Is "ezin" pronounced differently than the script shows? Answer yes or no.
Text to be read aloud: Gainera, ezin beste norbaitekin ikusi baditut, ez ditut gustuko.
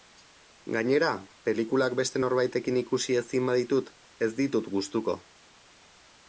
yes